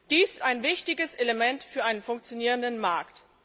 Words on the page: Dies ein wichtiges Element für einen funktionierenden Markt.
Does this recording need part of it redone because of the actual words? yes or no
no